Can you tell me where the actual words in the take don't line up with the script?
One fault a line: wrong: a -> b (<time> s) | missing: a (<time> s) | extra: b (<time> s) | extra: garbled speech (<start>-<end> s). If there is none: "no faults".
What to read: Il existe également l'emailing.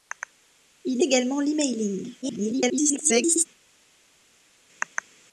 missing: existe (1.0 s)
extra: garbled speech (2.2-3.5 s)